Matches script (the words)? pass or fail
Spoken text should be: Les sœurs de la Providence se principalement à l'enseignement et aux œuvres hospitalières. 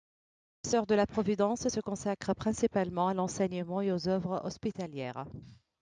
fail